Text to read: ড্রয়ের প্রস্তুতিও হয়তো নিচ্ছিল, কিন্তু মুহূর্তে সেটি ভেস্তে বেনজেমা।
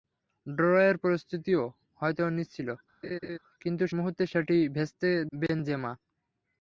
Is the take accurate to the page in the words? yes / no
yes